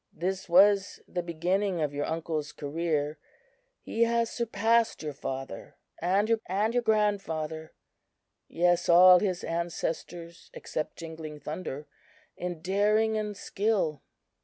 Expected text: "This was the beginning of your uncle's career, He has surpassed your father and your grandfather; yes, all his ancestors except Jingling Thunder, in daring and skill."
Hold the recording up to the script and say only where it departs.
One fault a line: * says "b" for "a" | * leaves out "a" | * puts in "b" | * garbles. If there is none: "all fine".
* puts in "and your"